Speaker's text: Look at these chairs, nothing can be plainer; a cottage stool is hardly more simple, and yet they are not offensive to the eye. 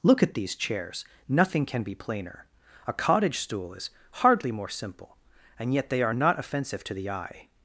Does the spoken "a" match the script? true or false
true